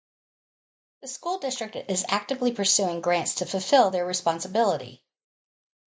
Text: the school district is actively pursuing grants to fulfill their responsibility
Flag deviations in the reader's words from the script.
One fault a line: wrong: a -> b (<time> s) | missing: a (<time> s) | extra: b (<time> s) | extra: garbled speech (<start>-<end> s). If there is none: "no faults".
no faults